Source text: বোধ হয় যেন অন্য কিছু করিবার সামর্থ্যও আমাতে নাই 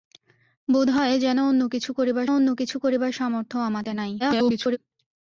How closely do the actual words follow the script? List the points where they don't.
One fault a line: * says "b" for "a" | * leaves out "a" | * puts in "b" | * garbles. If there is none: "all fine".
* puts in "অন্য কিছু করিবার"
* garbles